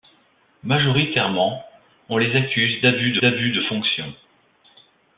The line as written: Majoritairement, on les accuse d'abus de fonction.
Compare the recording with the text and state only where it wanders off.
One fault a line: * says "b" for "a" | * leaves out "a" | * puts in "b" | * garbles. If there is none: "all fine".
* puts in "d'abus de"